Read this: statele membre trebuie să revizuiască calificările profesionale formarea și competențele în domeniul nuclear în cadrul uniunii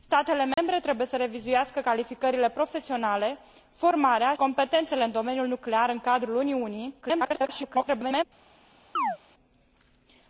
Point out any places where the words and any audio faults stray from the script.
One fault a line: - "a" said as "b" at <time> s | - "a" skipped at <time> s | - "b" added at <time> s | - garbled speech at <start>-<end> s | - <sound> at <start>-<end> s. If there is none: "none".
- dropout at 0.5-0.6 s
- "și" skipped at 4.3 s
- garbled speech at 7.0-8.2 s
- chirp at 9.0-9.2 s